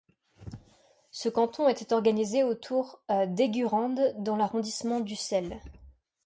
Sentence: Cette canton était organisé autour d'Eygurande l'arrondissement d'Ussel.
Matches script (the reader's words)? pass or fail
fail